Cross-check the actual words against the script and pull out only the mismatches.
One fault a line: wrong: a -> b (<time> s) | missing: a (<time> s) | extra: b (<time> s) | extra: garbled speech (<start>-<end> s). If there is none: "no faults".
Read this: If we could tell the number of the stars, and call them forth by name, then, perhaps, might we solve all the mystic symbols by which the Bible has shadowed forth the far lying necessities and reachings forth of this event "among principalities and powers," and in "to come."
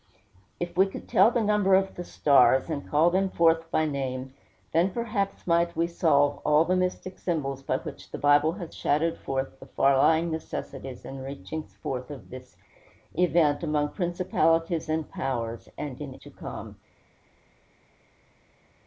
no faults